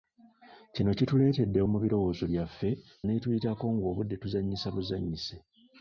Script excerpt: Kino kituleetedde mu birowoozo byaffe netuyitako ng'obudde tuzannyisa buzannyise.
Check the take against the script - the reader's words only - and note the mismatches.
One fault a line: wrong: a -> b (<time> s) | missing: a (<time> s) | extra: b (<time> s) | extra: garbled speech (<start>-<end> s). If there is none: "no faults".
no faults